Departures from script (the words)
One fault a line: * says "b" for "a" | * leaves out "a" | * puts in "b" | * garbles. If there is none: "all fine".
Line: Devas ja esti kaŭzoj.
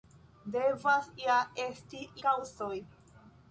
all fine